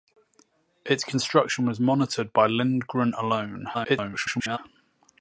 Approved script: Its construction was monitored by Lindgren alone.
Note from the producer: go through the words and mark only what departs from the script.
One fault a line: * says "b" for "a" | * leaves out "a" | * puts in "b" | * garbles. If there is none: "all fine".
* garbles